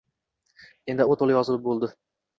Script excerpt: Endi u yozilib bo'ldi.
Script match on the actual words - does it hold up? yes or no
no